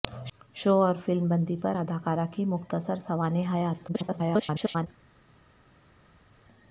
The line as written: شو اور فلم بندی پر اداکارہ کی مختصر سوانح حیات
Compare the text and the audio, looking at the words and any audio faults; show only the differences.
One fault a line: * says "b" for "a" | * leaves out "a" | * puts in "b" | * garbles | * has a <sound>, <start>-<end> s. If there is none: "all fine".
* garbles